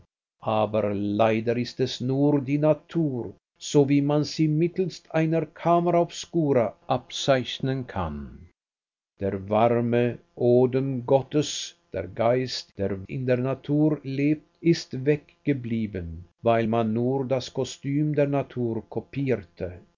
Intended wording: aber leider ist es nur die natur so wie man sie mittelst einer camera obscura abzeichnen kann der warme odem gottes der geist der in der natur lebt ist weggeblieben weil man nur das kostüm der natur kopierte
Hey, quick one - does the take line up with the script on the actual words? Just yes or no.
yes